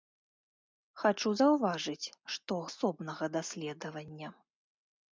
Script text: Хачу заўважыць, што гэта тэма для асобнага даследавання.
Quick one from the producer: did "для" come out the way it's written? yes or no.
no